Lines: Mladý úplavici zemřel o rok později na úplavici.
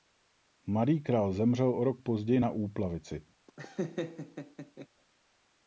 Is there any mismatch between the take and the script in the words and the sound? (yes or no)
yes